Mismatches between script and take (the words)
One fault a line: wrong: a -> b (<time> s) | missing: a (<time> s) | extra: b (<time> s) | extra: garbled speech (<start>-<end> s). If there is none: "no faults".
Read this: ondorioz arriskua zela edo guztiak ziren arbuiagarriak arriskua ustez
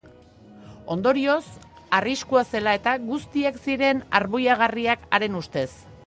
wrong: edo -> eta (2.8 s)
wrong: arriskua -> haren (5.2 s)